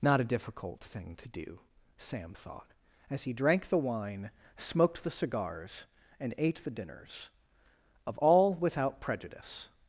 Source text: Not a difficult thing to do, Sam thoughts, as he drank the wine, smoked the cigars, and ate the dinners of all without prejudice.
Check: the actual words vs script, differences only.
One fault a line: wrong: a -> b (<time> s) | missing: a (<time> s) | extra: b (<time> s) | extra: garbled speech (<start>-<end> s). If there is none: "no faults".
wrong: thoughts -> thought (2.3 s)